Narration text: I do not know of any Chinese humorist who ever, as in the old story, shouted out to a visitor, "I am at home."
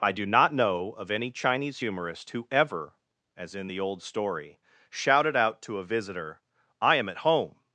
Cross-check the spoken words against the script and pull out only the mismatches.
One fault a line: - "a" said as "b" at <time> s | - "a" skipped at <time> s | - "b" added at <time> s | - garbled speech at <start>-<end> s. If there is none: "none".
none